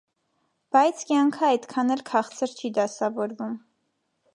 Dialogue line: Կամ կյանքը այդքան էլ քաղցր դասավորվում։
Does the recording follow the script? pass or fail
fail